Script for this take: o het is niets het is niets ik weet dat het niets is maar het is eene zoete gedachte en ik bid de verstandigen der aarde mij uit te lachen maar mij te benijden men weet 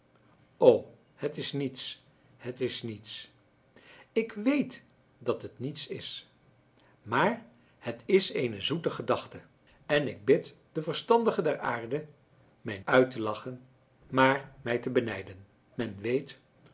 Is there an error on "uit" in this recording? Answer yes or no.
no